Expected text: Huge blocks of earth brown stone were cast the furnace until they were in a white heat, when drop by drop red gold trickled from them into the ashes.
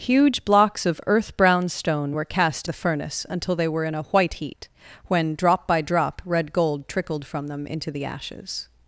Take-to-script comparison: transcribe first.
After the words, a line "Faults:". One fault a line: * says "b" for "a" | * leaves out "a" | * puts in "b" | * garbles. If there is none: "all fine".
Huge blocks of earth brown stone were cast the furnace until they were in a white heat, when drop by drop red gold trickled from them into the ashes.
Faults:
all fine